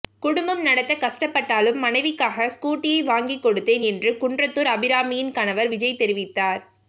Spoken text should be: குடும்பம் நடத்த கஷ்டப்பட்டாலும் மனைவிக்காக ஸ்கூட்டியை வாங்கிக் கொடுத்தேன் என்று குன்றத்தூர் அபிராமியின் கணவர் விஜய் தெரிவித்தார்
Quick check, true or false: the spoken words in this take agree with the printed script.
true